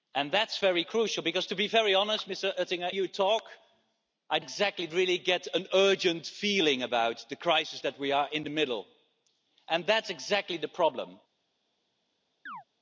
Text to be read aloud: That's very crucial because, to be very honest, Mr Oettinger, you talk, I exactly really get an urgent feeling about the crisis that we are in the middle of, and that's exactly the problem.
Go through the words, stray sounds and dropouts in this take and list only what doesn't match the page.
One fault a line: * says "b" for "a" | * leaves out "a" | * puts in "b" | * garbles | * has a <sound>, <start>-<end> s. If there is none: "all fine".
* has a chirp, 12.5-12.6 s